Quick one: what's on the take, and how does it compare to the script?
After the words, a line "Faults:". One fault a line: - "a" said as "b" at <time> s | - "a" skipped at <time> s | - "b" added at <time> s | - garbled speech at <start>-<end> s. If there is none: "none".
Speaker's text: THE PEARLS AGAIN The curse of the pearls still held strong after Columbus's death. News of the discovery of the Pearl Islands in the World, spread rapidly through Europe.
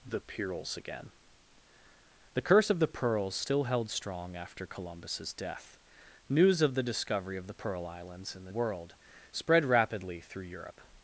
THE PEARLS AGAIN The curse of the pearls still held strong after Columbus's death. News of the discovery of the Pearl Islands in the World, spread rapidly through Europe.
Faults:
none